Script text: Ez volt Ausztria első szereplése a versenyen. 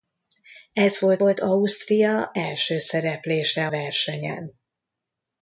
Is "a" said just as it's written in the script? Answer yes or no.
no